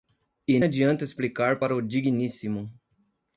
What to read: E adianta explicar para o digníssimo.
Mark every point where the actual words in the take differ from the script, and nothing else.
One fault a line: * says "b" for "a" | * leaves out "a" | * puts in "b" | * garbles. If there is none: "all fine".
all fine